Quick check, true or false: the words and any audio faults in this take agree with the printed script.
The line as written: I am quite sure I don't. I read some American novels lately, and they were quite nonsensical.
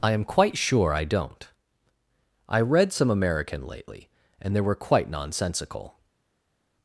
false